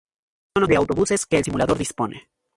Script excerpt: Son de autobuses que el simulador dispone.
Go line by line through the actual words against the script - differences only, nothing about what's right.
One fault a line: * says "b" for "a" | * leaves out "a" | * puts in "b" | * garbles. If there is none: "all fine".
all fine